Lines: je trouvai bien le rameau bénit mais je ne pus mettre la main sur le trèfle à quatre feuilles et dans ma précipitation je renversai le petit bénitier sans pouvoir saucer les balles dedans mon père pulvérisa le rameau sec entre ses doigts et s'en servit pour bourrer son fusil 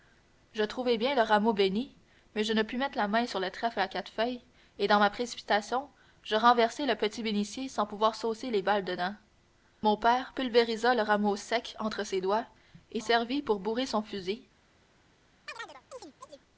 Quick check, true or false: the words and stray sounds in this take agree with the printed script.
false